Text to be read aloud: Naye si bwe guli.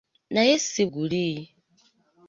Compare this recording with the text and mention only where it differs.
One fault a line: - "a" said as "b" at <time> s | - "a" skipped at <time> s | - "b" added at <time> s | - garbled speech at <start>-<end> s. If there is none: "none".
- "bwe" skipped at 0.8 s